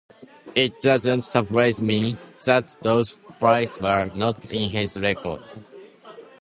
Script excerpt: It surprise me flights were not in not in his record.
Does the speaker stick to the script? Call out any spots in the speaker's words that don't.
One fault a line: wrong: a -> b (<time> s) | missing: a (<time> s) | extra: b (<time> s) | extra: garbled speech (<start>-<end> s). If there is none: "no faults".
extra: doesn't (0.8 s)
extra: that those (2.5 s)
missing: not in (4.7 s)